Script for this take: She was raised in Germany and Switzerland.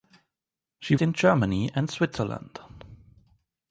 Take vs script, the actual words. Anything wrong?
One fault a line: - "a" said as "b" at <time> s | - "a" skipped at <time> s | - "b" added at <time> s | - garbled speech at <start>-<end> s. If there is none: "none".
- "was raised" skipped at 0.9 s